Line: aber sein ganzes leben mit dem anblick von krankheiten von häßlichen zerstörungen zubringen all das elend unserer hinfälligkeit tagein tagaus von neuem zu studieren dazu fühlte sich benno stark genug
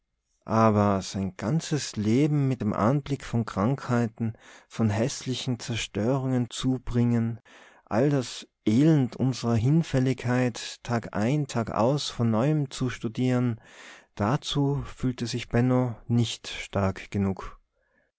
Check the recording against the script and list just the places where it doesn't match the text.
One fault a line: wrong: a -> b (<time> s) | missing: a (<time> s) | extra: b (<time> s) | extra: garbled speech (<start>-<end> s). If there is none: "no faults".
extra: nicht (16.1 s)